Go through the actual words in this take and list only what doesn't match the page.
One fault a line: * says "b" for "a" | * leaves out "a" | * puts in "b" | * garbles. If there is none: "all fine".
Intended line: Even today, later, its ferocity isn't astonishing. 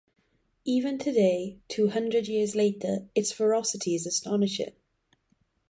* puts in "two hundred years"
* says "is" for "isn't"